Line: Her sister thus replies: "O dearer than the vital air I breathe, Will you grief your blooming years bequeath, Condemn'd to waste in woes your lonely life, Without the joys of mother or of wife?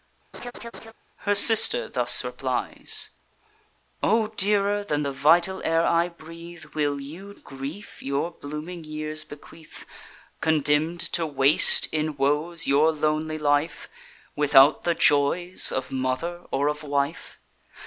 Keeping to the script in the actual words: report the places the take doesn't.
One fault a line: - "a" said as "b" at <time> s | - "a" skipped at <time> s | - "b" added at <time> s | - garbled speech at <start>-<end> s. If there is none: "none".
none